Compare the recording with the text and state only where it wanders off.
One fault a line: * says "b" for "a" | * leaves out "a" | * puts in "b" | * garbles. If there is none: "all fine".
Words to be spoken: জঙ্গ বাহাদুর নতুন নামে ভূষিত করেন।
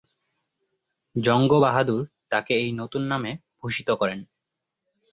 * puts in "তাকে এই"